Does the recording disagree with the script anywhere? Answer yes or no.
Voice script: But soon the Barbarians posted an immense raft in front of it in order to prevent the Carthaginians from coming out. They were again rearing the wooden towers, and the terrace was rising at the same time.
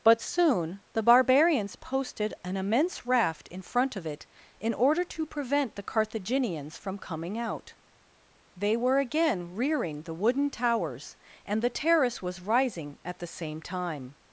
no